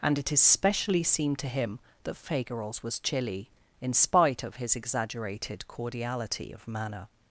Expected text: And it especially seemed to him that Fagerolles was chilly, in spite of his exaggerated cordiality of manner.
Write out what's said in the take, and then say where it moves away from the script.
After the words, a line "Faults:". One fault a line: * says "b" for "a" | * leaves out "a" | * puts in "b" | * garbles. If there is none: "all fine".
And it especially seemed to him that Fagerolles was chilly, in spite of his exaggerated cordiality of manner.
Faults:
all fine